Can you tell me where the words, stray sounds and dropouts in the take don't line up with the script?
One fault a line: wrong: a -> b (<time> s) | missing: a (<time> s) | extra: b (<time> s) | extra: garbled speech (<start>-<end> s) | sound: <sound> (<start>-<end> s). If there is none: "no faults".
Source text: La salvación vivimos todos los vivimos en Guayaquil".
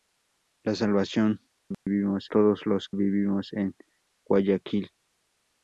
sound: dropout (1.7-1.9 s)